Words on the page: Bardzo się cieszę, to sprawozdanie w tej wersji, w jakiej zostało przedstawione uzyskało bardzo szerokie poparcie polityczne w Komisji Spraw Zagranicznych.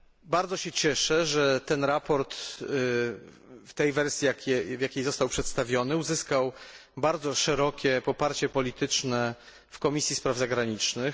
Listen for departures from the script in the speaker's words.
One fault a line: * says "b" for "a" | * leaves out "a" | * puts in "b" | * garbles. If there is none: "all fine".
* puts in "że"